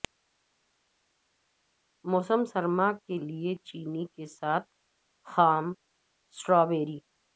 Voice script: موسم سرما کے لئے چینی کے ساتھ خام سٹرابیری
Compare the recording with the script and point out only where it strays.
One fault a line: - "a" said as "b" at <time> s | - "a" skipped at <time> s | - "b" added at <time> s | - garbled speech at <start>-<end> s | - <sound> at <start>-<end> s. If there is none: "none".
none